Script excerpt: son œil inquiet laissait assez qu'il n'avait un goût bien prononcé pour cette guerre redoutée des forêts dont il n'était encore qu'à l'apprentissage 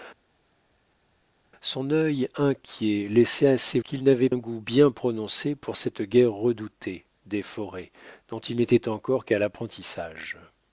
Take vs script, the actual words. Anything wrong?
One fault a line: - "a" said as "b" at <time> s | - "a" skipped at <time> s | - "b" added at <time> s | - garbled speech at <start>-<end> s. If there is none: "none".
none